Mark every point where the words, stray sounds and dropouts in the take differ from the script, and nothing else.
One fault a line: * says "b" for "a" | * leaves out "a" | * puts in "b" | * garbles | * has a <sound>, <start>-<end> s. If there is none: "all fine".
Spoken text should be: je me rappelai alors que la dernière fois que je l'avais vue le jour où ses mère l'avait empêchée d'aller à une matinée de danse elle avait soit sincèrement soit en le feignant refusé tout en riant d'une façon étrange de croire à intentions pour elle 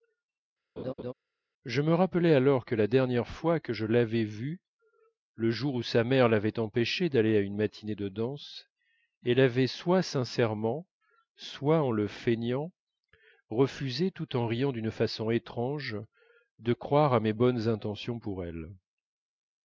* has a laugh, 0.8-1.1 s
* says "sa" for "ses"
* puts in "mes bonnes"